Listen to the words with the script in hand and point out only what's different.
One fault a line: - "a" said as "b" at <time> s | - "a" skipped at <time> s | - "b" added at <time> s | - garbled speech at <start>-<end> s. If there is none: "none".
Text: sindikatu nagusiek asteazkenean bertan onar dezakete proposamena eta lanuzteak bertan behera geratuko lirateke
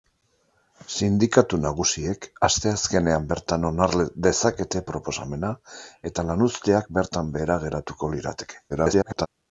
- garbled speech at 8.7-9.3 s